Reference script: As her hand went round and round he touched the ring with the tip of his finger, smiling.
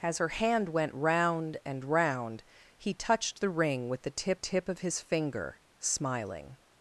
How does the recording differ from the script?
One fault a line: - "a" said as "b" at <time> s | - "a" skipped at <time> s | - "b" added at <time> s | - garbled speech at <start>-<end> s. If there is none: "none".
- "tip" added at 4.3 s